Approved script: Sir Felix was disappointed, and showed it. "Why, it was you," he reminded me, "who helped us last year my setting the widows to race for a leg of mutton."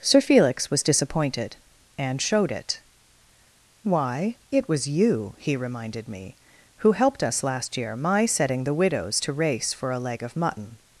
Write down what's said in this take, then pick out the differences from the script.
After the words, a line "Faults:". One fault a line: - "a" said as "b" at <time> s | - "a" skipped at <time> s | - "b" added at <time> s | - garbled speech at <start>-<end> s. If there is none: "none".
Sir Felix was disappointed, and showed it. "Why, it was you," he reminded me, "who helped us last year my setting the widows to race for a leg of mutton."
Faults:
none